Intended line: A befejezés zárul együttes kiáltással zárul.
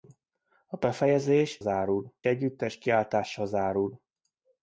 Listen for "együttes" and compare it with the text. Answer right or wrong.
right